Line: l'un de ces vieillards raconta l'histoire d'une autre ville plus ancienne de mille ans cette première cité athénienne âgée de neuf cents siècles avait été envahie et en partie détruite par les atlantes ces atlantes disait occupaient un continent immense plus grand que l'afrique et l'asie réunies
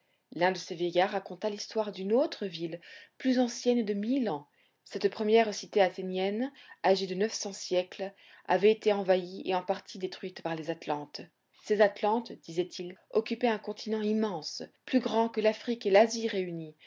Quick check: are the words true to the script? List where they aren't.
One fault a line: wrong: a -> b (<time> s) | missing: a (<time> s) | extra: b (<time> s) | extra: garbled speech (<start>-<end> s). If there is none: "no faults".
extra: il (12.8 s)